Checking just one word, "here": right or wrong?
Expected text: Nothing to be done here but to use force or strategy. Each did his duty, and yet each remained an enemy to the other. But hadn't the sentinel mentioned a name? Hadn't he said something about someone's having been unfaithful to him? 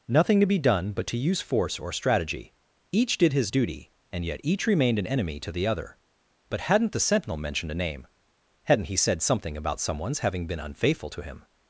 wrong